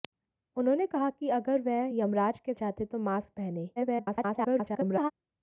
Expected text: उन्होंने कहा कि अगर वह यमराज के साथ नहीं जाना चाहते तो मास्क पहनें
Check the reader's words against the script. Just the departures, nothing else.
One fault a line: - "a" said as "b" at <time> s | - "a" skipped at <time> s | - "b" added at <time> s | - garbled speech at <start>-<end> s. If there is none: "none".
- "साथ नहीं जाना" skipped at 2.5 s
- garbled speech at 3.8-5.1 s